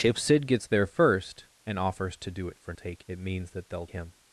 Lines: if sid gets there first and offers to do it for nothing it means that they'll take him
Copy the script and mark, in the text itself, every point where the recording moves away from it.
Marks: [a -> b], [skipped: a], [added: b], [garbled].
if sid gets there first and offers to do it for [nothing -> take] it means that they'll [skipped: take] him